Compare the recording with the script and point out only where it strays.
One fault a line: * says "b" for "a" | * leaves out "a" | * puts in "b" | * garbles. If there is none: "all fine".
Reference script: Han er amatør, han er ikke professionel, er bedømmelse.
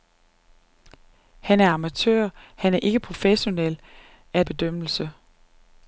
all fine